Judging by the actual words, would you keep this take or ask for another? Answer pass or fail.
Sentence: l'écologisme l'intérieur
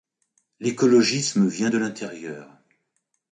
fail